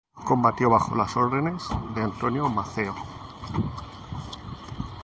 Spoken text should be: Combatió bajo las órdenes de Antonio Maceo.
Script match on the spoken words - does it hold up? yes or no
yes